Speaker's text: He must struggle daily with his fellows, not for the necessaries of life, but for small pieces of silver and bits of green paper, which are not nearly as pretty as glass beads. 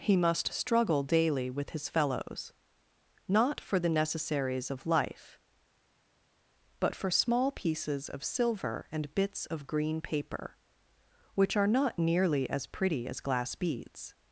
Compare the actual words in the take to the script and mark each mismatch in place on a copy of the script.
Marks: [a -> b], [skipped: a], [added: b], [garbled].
He must struggle daily with his fellows, not for the necessaries of life, but for small pieces of silver and bits of green paper, which are not nearly as pretty as glass beads.